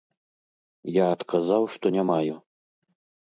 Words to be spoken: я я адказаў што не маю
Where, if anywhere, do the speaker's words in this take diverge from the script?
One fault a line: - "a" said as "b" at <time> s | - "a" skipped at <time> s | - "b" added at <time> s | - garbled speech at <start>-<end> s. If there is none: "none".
- "я" skipped at 1.1 s